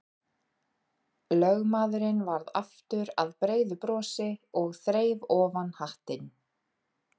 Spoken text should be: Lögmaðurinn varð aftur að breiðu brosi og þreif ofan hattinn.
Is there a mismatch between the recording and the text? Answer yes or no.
no